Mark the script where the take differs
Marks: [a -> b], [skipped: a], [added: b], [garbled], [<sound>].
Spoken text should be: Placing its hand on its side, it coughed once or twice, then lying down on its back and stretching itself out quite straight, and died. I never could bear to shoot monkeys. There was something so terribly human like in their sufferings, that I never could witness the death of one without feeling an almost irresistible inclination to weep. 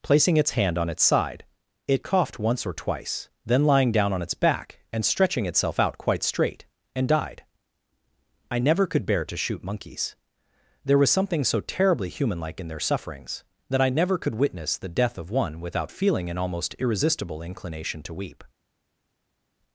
Placing its hand on its side, it coughed once or twice, then lying down on its back and stretching itself out quite straight, and died. I never could bear to shoot monkeys. There was something so terribly human like in their sufferings, that I never could witness the death of one without feeling an almost irresistible inclination to weep.